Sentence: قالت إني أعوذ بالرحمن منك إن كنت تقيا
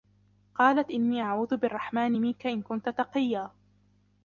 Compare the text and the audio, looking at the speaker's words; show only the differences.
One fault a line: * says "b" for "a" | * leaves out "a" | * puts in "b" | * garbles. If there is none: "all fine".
all fine